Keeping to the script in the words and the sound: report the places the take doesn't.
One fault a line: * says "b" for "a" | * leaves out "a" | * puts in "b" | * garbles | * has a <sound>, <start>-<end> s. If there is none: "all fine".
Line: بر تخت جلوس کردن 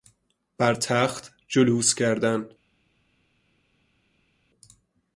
all fine